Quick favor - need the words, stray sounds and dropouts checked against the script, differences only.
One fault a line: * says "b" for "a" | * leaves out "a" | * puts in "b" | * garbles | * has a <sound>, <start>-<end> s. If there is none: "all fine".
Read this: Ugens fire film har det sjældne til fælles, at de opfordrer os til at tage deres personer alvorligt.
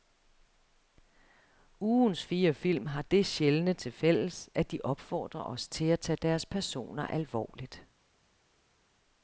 all fine